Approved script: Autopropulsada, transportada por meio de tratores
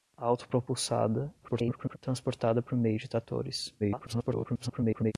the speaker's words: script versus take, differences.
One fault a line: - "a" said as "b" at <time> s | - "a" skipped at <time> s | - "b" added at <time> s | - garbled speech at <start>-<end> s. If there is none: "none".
- garbled speech at 1.4-2.0 s
- garbled speech at 3.8-5.1 s